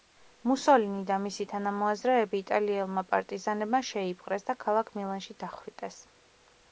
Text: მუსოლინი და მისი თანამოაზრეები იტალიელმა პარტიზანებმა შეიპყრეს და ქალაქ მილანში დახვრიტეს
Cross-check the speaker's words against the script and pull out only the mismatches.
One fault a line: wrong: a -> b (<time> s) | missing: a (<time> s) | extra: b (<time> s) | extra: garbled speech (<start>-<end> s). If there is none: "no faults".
no faults